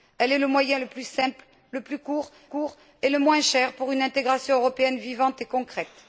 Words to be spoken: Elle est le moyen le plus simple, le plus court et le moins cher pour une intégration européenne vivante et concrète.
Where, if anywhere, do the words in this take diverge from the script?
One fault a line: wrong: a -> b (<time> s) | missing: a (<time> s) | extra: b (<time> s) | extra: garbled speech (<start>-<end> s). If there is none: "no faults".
extra: court (2.4 s)